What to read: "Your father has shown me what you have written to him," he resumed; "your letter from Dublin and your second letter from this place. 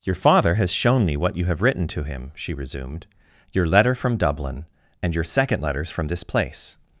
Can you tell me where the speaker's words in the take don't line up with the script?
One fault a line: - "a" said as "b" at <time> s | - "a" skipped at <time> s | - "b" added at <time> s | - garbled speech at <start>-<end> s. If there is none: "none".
- "he" said as "she" at 2.3 s
- "letter" said as "letters" at 5.6 s